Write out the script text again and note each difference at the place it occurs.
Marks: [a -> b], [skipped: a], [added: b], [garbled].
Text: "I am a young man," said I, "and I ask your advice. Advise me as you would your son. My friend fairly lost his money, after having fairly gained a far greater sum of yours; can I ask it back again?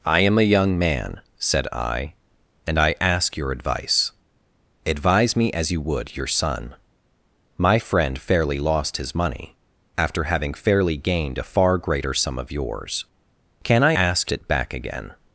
"I am a young man," said I, "and I ask your advice. Advise me as you would your son. My friend fairly lost his money, after having fairly gained a far greater sum of yours; can I ask it back again?